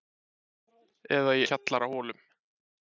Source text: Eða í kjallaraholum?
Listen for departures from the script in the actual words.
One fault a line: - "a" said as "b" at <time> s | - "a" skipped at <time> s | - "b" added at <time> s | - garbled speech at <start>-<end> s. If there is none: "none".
none